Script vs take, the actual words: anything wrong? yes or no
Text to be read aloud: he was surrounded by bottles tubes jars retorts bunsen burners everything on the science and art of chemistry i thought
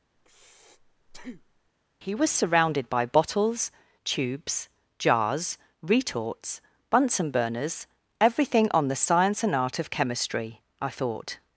no